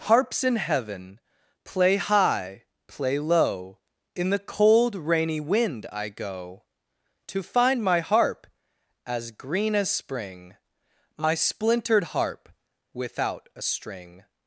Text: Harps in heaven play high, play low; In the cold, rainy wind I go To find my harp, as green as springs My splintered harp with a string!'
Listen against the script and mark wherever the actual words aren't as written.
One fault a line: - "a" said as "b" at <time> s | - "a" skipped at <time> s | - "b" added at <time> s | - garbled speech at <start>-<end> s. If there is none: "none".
- "springs" said as "spring" at 9.9 s
- "with" said as "without" at 12.9 s